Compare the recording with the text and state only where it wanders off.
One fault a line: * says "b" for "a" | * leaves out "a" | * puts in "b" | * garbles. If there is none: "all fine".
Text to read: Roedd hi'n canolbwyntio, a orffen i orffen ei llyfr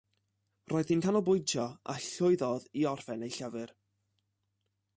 * says "llwyddodd" for "orffen"